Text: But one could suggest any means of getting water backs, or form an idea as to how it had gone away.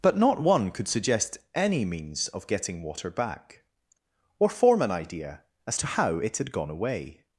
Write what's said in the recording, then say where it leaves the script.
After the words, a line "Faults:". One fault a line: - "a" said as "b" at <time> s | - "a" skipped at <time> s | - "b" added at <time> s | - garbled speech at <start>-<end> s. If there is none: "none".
But not one could suggest any means of getting water back, or form an idea as to how it had gone away.
Faults:
- "not" added at 0.2 s
- "backs" said as "back" at 3.1 s